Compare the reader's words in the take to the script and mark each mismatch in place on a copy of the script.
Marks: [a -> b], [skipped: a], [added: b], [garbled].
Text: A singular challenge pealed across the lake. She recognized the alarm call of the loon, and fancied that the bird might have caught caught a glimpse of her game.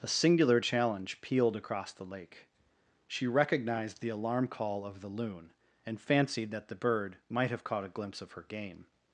A singular challenge pealed across the lake. She recognized the alarm call of the loon, and fancied that the bird might have caught [skipped: caught] a glimpse of her game.